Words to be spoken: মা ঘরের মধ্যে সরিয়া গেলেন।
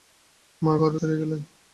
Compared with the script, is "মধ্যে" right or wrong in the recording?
wrong